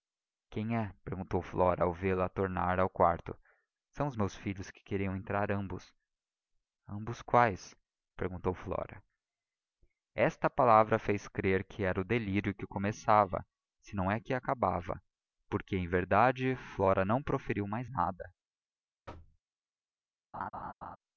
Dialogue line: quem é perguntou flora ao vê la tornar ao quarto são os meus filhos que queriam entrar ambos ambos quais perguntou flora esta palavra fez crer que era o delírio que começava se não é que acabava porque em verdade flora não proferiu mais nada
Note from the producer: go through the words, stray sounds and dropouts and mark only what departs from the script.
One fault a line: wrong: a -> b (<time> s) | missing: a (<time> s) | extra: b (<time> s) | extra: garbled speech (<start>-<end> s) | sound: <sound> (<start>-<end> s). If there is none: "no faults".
sound: thud (19.1-19.4 s)
sound: laugh (20.3-21.0 s)